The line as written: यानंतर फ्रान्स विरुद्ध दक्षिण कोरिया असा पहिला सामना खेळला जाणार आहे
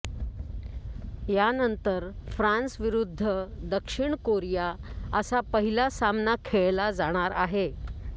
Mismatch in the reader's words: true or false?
false